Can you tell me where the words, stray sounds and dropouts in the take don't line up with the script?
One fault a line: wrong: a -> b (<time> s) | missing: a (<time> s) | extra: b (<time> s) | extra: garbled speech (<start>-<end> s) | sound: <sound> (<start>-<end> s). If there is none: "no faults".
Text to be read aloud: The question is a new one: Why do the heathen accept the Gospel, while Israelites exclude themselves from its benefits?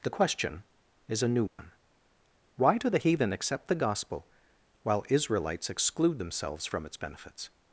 sound: dropout (1.5-1.6 s)